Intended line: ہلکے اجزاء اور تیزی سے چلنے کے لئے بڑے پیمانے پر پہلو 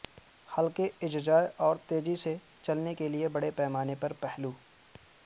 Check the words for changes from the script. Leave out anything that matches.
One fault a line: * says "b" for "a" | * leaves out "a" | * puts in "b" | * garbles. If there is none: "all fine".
all fine